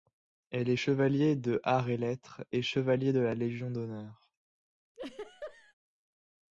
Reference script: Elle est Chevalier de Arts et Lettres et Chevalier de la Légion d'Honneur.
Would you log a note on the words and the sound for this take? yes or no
yes